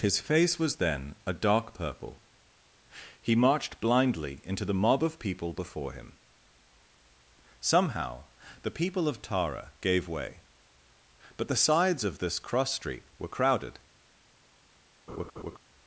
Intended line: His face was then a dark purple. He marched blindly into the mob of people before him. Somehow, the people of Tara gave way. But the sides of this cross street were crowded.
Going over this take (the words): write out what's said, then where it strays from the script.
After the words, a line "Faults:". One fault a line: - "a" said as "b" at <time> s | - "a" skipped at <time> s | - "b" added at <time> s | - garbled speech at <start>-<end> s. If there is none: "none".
His face was then a dark purple. He marched blindly into the mob of people before him. Somehow, the people of Tara gave way. But the sides of this cross street were crowded.
Faults:
none